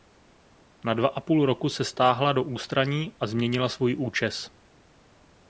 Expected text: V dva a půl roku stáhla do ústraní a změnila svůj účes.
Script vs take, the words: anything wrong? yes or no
yes